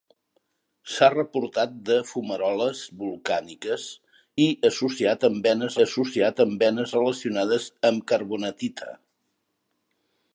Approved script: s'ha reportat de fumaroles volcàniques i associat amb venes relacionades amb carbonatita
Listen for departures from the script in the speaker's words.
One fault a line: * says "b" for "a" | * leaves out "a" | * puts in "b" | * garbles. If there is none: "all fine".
* puts in "associat amb venes"